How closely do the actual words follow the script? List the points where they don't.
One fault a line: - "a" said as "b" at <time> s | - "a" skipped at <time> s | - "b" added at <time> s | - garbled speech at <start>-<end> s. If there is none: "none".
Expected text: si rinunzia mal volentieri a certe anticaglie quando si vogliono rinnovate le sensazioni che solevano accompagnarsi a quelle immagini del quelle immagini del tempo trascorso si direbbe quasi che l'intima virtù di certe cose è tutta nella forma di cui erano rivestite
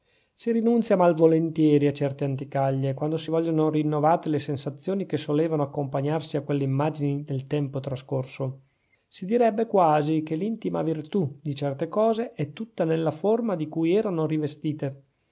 - "quelle immagini del" skipped at 7.5 s